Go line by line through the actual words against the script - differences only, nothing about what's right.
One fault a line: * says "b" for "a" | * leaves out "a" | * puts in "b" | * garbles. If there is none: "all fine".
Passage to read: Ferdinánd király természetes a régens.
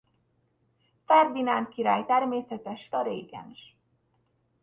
all fine